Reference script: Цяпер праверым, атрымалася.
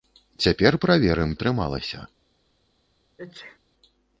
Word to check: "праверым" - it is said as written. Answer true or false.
true